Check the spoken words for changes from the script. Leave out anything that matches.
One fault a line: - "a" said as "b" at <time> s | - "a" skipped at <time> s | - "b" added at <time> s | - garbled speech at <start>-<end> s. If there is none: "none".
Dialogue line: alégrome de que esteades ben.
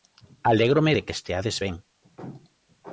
none